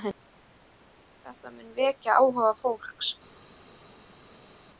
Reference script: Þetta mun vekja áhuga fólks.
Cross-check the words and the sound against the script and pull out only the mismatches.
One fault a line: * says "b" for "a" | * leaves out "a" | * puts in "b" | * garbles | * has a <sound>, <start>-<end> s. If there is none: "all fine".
all fine